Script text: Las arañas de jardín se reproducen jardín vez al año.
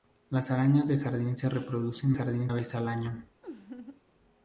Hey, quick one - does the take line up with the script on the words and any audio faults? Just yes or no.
no